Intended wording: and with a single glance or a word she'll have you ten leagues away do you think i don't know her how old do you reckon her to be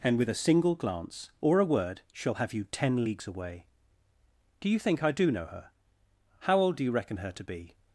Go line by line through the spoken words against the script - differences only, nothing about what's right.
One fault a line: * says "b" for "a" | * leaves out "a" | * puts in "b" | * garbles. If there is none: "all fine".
* says "do" for "don't"